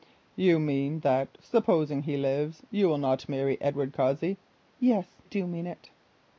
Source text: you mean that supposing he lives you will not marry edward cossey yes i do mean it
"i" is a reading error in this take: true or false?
true